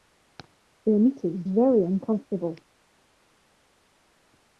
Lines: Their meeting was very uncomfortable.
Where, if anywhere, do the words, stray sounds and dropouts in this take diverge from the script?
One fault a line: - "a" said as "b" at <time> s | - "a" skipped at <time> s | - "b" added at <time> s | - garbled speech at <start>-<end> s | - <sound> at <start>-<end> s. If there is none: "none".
- "was" skipped at 1.4 s